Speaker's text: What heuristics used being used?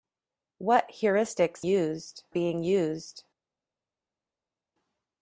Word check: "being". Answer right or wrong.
right